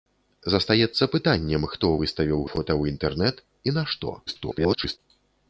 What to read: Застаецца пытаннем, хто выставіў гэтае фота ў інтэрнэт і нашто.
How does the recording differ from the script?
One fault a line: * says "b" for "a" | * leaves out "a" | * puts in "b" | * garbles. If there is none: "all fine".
* leaves out "гэтае"
* garbles